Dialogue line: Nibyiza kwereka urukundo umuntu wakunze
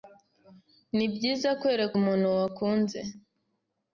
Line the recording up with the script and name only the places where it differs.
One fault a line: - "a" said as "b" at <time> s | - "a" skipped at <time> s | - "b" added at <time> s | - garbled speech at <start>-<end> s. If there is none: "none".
- "urukundo" skipped at 1.9 s